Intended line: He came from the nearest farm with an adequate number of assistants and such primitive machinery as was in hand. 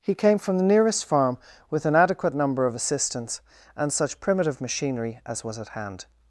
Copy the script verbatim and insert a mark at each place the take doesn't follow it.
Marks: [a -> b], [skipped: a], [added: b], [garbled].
He came from the nearest farm with an adequate number of assistants and such primitive machinery as was [in -> at] hand.